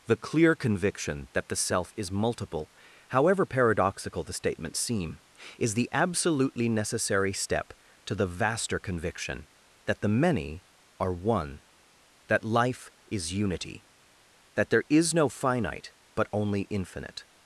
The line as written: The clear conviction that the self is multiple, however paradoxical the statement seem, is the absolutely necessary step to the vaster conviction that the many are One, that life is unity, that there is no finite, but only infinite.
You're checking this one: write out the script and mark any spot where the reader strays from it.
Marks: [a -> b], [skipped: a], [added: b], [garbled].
The clear conviction that the self is multiple, however paradoxical the statement seem, is the absolutely necessary step to the vaster conviction that the many are One, that life is unity, that there is no finite, but only infinite.